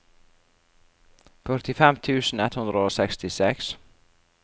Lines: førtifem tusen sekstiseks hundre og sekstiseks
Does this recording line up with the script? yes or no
no